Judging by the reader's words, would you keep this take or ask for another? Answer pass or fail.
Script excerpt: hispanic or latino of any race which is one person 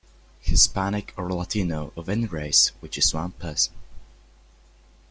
pass